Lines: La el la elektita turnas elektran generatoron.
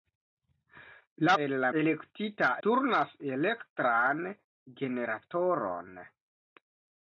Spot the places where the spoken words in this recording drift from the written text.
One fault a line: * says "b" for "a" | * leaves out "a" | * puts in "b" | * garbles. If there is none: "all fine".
all fine